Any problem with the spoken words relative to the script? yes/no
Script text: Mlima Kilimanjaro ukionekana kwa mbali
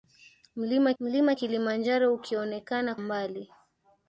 yes